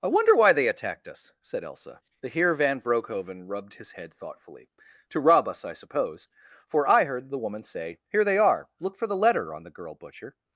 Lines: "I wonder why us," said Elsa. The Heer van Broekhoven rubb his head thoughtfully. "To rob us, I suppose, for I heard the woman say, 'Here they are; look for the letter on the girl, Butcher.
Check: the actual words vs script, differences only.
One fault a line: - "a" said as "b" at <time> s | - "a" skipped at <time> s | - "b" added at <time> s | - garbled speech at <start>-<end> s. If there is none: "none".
- "they attacked" added at 0.5 s
- "rubb" said as "rubbed" at 3.5 s